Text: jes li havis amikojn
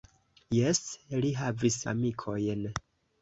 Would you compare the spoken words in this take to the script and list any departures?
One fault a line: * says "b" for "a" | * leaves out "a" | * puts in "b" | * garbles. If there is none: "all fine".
all fine